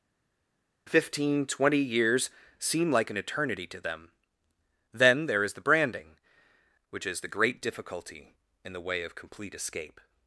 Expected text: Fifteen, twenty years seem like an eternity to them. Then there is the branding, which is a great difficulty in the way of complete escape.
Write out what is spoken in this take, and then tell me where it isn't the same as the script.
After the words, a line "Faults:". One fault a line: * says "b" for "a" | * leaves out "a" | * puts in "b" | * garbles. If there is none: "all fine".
Fifteen, twenty years seem like an eternity to them. Then there is the branding, which is the great difficulty in the way of complete escape.
Faults:
* says "the" for "a"